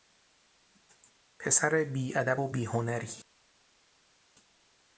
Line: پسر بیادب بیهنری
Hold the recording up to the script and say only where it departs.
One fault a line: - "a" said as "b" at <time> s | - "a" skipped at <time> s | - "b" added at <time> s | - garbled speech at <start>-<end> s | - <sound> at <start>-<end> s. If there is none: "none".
- "و" added at 2.4 s